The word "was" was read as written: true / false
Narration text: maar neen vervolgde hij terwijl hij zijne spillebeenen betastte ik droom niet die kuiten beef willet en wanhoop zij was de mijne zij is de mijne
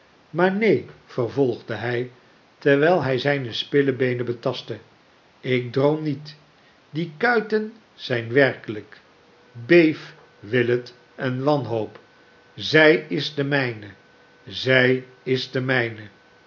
false